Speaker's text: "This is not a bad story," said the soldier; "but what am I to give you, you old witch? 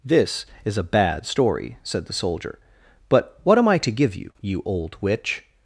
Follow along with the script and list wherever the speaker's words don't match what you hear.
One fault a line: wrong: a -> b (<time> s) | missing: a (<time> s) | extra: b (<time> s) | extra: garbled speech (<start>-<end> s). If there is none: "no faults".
missing: not (0.8 s)